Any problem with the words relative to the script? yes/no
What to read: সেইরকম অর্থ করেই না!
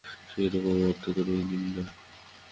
yes